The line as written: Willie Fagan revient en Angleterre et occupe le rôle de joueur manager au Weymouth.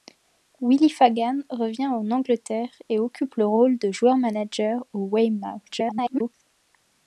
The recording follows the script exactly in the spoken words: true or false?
false